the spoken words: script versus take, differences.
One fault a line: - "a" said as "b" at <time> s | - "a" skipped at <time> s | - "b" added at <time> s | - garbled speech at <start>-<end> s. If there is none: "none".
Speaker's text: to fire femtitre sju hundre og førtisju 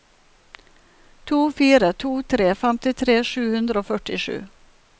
- "to tre" added at 2.0 s